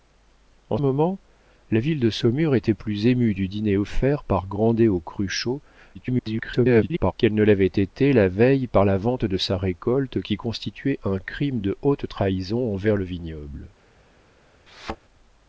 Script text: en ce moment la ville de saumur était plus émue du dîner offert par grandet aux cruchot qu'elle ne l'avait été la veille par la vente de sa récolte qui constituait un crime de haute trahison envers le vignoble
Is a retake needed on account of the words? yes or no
yes